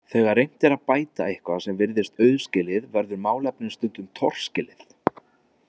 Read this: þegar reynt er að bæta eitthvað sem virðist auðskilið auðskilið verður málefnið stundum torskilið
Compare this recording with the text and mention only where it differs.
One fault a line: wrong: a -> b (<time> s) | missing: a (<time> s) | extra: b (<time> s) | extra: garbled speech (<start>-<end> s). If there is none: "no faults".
missing: auðskilið (2.9 s)